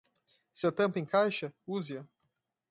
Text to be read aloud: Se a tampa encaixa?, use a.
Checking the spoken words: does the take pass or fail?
pass